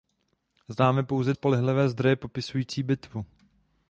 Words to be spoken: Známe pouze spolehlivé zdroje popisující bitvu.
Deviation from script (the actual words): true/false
false